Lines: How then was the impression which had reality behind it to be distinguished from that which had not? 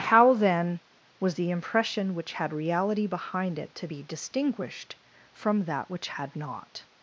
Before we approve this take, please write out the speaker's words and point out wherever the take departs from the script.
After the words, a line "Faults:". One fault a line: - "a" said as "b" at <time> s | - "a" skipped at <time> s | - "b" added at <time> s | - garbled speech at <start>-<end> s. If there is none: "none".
How then was the impression which had reality behind it to be distinguished from that which had not?
Faults:
none